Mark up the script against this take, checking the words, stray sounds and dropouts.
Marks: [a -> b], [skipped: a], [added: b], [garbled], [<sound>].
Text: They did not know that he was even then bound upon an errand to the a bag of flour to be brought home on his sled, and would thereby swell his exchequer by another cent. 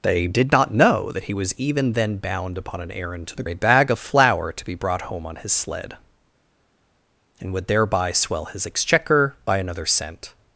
They did not know that he was even then bound upon an errand to the a bag of flour to be brought home on his sled, and would thereby swell his exchequer by another cent.